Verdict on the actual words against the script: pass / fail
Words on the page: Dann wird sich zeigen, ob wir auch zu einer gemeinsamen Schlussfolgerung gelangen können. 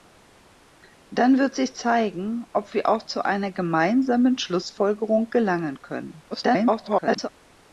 fail